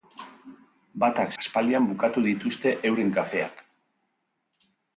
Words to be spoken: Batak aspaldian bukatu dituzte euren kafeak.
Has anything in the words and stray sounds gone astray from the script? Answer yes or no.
no